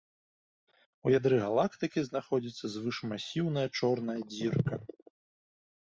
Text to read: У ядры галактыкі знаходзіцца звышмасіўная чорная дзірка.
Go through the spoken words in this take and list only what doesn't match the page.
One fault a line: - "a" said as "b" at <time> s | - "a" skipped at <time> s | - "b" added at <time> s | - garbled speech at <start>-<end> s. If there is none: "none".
none